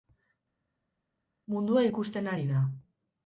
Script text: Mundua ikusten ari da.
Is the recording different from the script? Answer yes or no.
no